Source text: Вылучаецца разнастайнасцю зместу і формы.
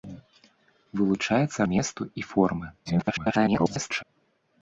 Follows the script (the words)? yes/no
no